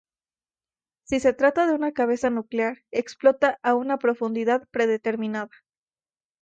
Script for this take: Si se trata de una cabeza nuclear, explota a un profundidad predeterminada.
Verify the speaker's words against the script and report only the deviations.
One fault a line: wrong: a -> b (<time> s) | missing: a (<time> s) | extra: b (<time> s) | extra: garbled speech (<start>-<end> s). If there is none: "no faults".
wrong: un -> una (3.7 s)